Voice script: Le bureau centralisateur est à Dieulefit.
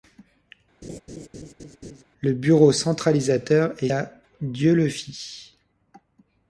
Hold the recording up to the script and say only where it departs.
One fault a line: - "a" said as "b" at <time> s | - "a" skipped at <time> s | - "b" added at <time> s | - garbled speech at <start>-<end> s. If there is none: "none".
none